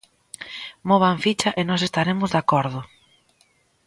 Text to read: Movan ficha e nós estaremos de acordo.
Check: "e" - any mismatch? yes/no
no